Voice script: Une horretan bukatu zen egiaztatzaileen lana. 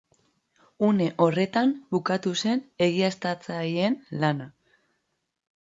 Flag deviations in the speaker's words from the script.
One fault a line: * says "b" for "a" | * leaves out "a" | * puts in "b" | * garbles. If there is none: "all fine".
all fine